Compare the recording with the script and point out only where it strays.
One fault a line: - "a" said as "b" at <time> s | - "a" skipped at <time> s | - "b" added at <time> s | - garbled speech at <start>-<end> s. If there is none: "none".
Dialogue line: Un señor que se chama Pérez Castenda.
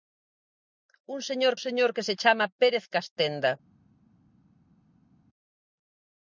- "señor" added at 1.6 s